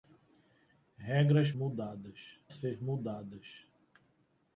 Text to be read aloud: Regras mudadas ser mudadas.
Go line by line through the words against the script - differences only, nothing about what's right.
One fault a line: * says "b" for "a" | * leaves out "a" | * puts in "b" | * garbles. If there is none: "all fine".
all fine